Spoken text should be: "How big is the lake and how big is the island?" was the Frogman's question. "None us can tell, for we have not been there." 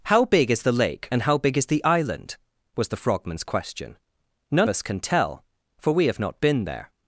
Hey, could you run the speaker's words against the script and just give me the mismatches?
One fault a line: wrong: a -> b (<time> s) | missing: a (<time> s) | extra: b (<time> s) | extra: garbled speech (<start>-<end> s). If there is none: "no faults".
no faults